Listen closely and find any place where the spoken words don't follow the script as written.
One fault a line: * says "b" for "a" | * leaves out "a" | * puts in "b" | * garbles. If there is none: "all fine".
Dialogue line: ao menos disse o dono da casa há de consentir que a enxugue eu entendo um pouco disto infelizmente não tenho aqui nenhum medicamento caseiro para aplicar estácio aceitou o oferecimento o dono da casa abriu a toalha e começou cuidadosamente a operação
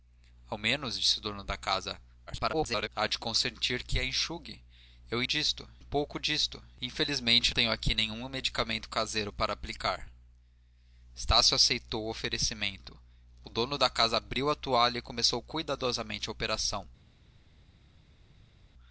* garbles
* says "disto" for "entendo"
* leaves out "não"